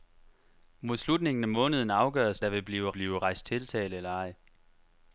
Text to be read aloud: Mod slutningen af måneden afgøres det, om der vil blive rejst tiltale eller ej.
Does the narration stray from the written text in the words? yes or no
yes